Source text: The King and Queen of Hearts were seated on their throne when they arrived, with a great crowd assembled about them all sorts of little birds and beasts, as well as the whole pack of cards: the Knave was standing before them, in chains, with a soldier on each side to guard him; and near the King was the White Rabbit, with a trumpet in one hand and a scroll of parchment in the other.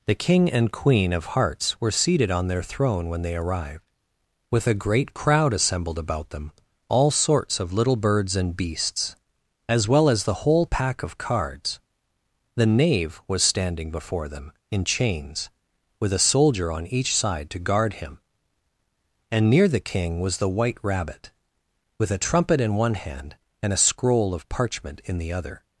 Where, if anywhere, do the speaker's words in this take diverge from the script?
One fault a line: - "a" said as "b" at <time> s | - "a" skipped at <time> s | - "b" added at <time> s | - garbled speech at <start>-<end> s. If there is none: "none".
none